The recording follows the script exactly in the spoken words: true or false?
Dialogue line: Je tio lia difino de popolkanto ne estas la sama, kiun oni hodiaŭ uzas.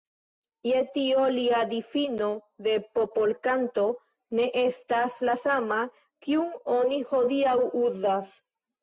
true